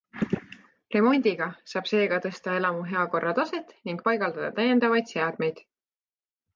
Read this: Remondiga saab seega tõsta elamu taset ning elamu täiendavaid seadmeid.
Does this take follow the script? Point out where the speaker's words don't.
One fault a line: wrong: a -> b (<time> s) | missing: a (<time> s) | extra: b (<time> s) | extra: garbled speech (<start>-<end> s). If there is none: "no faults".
extra: heakorra (3.0 s)
wrong: elamu -> paigaldada (4.1 s)